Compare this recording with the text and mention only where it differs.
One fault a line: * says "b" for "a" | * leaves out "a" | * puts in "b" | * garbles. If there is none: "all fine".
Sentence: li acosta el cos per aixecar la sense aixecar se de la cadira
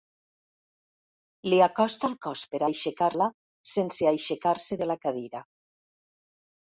all fine